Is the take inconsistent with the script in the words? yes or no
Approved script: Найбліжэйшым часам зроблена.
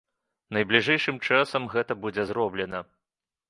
yes